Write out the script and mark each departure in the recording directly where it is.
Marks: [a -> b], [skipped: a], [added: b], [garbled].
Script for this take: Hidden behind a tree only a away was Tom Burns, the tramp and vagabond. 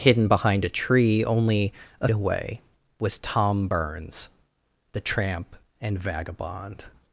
Hidden behind a tree only a away was Tom Burns, the tramp and vagabond.